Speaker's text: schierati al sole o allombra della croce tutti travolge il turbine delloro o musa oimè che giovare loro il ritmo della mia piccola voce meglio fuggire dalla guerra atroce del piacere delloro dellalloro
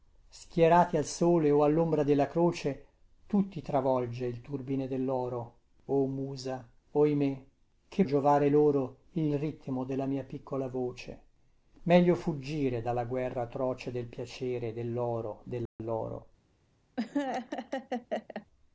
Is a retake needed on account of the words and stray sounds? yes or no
yes